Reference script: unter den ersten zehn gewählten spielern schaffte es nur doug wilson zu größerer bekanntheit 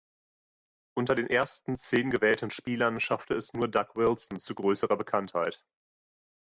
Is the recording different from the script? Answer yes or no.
no